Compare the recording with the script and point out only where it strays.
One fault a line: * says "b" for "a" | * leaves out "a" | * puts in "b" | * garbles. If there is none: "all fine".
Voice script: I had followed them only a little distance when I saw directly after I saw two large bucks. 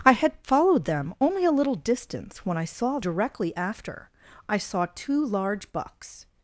all fine